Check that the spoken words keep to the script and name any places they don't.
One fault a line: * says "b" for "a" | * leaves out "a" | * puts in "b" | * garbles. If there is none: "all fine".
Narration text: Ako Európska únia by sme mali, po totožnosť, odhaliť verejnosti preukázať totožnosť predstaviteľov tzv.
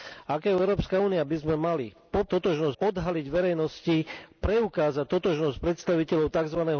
all fine